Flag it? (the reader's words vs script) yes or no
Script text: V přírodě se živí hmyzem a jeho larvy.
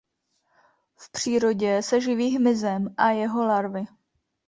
no